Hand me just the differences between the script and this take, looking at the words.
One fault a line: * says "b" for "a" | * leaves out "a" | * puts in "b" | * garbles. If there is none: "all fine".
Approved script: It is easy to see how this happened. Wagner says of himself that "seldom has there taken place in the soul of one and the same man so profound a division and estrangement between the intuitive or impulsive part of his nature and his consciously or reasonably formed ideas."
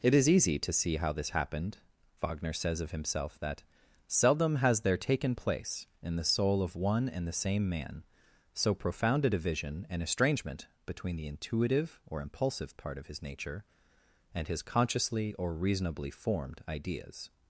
all fine